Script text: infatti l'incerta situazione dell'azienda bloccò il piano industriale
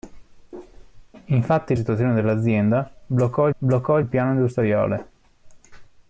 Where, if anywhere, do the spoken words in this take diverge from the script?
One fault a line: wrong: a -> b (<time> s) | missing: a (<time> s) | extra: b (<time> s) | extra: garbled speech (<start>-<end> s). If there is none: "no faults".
missing: l'incerta (1.8 s)
extra: bloccò (3.6 s)